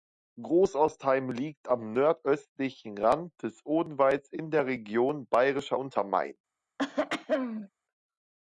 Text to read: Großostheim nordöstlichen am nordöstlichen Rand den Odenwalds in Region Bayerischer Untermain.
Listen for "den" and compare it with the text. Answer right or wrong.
wrong